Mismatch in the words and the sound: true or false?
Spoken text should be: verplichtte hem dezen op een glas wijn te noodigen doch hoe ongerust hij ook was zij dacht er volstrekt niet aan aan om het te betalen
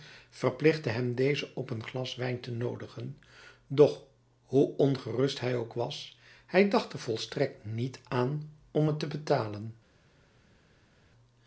true